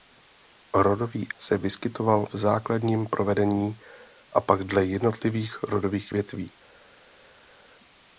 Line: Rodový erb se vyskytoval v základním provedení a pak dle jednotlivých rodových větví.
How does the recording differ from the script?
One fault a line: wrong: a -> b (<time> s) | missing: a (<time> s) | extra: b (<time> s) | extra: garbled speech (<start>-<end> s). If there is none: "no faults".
missing: erb (1.3 s)